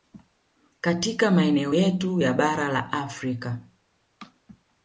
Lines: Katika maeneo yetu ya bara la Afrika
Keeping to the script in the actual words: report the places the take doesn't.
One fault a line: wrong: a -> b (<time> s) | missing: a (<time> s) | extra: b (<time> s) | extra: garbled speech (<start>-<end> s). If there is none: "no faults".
no faults